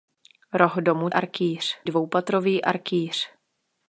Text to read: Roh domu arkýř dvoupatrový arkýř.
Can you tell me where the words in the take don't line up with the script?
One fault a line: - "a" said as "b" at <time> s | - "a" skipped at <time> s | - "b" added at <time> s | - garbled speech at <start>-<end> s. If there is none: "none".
none